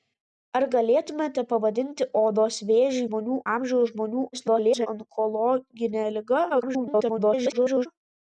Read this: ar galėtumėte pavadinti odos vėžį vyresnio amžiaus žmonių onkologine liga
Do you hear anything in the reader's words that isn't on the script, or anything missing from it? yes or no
yes